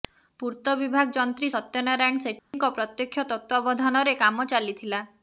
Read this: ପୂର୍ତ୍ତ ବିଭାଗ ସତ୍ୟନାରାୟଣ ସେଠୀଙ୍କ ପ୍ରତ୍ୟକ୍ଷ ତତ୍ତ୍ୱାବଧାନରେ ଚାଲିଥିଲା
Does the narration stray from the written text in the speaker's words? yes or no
yes